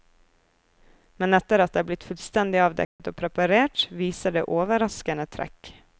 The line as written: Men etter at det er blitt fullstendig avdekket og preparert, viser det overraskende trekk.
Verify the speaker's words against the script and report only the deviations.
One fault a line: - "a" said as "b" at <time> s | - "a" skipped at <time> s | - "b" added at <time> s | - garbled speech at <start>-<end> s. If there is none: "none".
none